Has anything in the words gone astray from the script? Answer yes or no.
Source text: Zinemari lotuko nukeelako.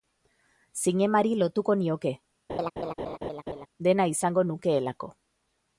yes